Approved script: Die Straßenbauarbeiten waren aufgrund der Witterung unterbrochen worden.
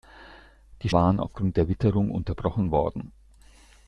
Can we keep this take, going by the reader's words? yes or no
no